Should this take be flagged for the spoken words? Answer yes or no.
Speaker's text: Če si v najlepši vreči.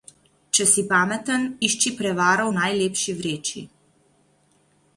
yes